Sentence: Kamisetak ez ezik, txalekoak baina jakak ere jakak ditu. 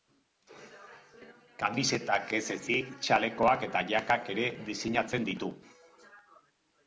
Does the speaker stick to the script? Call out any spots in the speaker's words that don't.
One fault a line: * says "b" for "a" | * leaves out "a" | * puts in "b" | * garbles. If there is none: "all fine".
* says "eta" for "baina"
* says "diseinatzen" for "jakak"